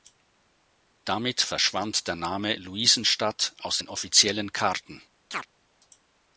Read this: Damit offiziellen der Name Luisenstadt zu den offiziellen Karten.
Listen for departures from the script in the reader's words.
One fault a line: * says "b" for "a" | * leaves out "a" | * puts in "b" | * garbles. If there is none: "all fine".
* says "verschwand" for "offiziellen"
* says "aus" for "zu"